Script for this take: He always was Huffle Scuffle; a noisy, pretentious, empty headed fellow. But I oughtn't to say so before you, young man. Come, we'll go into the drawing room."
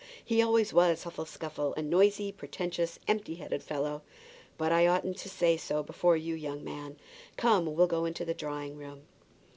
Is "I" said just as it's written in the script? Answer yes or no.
yes